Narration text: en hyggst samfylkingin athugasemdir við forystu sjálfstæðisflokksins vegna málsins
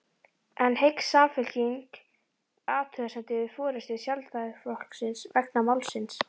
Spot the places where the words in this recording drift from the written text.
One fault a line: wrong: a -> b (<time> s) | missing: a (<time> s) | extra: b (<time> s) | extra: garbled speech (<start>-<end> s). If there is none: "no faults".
no faults